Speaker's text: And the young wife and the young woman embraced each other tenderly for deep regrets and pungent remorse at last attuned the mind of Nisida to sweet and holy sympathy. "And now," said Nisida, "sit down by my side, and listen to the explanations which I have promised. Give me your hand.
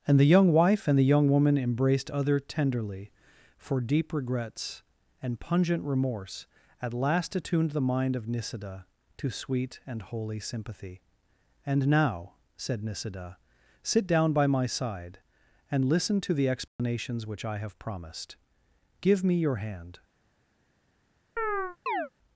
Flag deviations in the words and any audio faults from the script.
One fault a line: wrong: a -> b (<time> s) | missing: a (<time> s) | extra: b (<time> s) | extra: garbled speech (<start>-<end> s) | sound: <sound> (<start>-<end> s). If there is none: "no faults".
missing: each (2.1 s)
sound: dropout (16.7-16.8 s)
sound: chirp (21.4-22.1 s)